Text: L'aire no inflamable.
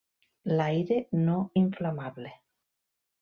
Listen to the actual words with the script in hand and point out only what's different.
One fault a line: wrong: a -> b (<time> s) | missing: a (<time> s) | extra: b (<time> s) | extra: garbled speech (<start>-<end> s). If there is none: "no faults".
no faults